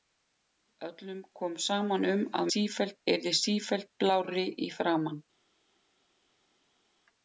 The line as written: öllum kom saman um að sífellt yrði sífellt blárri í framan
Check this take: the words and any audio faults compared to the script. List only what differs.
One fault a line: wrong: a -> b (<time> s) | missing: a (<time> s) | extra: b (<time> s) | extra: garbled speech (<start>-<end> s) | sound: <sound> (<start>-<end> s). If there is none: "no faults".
no faults